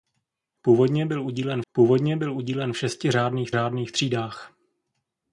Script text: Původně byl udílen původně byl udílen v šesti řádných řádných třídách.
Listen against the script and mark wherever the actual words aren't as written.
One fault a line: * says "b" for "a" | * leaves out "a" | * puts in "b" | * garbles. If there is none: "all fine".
all fine